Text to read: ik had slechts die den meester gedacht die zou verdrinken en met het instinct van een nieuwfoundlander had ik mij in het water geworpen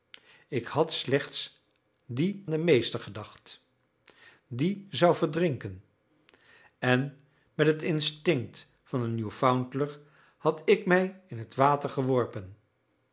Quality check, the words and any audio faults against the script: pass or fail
pass